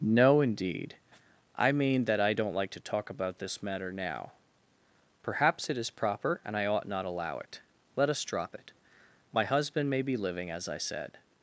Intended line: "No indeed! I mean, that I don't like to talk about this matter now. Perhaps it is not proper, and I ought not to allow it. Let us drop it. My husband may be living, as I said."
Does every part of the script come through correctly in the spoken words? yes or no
no